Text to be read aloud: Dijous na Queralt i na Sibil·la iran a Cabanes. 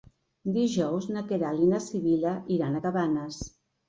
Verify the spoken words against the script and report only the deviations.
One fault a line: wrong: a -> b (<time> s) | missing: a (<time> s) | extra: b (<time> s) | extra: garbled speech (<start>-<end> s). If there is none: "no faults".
no faults